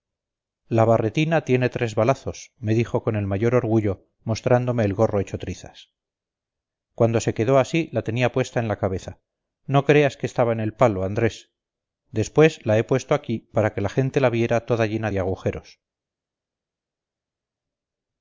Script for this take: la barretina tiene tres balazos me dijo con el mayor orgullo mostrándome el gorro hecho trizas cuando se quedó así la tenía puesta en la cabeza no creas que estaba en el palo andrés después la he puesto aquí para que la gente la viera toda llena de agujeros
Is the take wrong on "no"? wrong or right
right